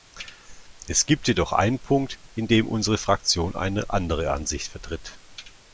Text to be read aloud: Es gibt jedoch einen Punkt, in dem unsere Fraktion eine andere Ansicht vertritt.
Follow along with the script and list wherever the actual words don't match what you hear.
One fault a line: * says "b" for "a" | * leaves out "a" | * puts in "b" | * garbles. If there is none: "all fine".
all fine